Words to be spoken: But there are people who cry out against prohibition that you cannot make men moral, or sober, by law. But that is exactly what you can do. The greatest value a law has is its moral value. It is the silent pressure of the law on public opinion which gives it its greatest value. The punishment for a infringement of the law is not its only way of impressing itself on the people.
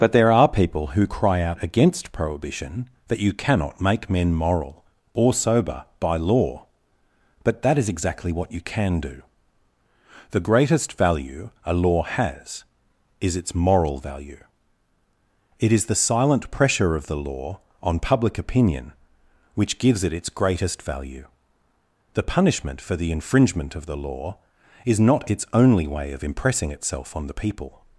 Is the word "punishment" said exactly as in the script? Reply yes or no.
yes